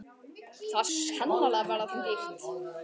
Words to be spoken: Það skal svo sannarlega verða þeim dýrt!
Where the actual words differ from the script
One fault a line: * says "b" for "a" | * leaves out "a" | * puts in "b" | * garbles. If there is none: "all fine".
* leaves out "skal svo"